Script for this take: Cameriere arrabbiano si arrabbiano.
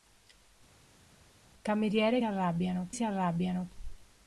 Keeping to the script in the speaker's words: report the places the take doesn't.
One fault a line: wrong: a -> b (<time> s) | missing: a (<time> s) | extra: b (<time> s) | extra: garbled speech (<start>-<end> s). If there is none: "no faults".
no faults